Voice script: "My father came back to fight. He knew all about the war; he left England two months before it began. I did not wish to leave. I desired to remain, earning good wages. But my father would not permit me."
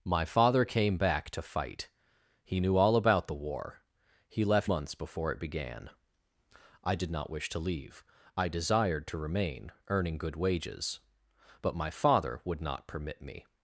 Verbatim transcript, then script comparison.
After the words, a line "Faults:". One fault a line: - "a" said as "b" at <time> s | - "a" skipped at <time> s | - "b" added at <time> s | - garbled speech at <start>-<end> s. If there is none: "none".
"My father came back to fight. He knew all about the war; he left Months before it began. I did not wish to leave. I desired to remain, earning good wages. But my father would not permit me."
Faults:
- "England two" skipped at 4.7 s